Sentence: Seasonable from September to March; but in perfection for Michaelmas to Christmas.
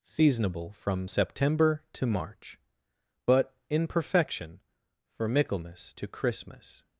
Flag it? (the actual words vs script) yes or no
no